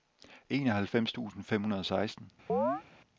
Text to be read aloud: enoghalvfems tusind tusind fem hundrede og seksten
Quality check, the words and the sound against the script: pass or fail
fail